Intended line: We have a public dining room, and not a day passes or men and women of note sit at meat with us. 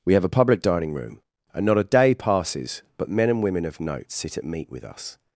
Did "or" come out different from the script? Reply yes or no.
yes